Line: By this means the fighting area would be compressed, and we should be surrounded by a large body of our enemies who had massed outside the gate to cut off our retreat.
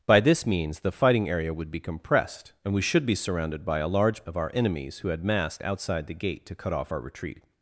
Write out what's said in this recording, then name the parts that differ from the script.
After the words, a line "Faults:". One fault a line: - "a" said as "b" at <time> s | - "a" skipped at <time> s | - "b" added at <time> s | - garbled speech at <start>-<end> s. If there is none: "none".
By this means the fighting area would be compressed, and we should be surrounded by a large of our enemies who had massed outside the gate to cut off our retreat.
Faults:
- "body" skipped at 4.2 s